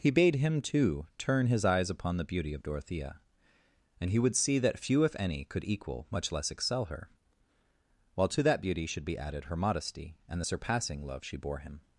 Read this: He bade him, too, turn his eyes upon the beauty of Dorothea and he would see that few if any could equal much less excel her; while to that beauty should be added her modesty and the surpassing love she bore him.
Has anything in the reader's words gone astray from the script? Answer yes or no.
no